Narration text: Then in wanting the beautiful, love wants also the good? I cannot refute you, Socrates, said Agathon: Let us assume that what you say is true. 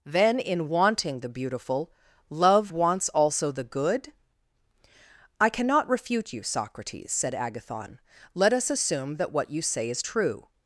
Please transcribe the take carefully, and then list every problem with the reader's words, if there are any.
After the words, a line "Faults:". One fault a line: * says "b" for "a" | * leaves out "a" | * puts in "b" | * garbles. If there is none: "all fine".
Then in wanting the beautiful, love wants also the good? I cannot refute you, Socrates, said Agathon: Let us assume that what you say is true.
Faults:
all fine